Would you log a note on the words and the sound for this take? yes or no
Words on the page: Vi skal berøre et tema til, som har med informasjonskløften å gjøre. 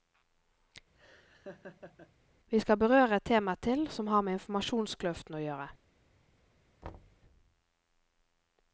yes